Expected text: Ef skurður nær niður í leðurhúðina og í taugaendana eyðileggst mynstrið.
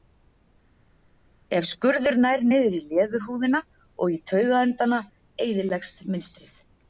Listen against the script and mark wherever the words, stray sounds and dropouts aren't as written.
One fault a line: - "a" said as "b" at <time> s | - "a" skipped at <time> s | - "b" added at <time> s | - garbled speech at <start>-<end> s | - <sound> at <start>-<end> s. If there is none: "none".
none